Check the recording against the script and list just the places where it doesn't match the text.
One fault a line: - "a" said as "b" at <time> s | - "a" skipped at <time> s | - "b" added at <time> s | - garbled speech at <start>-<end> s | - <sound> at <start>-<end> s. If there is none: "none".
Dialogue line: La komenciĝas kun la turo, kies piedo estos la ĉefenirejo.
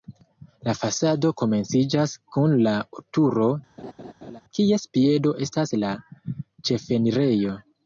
- "fasado" added at 0.8 s
- laugh at 3.8-4.4 s
- "estos" said as "estas" at 5.5 s